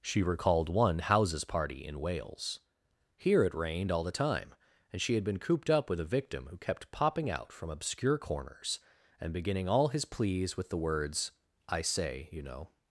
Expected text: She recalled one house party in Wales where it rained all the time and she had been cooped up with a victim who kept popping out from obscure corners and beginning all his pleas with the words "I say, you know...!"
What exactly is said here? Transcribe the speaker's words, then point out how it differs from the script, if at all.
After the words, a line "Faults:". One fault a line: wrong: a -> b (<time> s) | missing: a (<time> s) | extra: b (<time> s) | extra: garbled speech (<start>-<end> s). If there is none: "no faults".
She recalled one houses party in Wales here it rained all the time and she had been cooped up with a victim who kept popping out from obscure corners and beginning all his pleas with the words "I say, you know...!"
Faults:
wrong: house -> houses (1.0 s)
wrong: where -> here (3.2 s)